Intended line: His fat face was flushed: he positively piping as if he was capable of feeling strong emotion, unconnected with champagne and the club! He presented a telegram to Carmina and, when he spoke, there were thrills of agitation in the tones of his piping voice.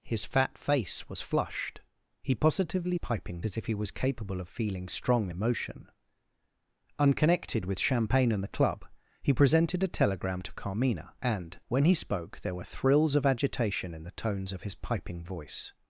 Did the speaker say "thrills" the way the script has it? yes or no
yes